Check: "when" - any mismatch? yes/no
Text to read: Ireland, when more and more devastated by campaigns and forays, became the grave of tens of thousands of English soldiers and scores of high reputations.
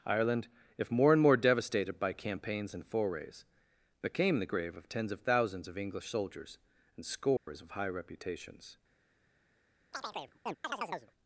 yes